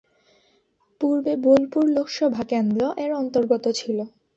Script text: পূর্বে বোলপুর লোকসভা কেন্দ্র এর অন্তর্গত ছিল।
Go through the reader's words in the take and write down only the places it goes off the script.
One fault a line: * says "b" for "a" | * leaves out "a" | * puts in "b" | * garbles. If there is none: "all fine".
all fine